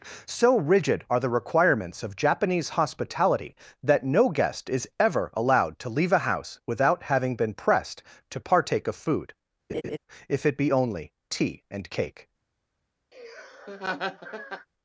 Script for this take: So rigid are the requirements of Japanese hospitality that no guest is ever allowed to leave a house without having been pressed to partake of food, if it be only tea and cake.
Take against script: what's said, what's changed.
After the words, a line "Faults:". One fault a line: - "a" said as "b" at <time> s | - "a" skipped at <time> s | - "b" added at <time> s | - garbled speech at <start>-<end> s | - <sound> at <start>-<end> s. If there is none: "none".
So rigid are the requirements of Japanese hospitality that no guest is ever allowed to leave a house without having been pressed to partake of food, if it be only tea and cake.
Faults:
- laugh at 9.7-10.0 s
- laugh at 13.1-14.7 s